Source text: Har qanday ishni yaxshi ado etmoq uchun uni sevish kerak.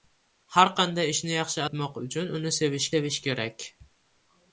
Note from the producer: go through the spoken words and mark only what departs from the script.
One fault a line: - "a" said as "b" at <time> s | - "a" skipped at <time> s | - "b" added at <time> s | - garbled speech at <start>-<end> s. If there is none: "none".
- "ado" skipped at 1.6 s
- "sevish" added at 2.9 s